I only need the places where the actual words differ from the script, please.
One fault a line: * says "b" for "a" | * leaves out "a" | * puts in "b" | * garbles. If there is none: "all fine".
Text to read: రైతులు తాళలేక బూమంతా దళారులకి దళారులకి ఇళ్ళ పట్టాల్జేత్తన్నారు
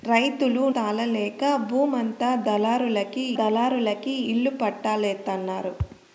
all fine